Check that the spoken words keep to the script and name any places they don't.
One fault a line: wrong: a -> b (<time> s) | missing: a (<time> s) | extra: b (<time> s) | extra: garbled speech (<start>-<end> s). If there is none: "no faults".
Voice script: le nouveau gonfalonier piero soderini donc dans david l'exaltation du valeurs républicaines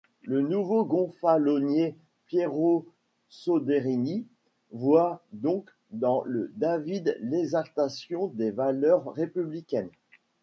extra: voit (4.7 s)
extra: le (6.2 s)
wrong: du -> des (8.2 s)